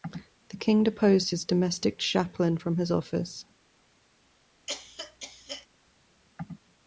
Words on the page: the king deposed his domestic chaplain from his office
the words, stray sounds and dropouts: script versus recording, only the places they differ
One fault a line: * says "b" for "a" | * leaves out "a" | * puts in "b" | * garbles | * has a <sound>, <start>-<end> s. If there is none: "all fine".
* has a cough, 4.7-5.7 s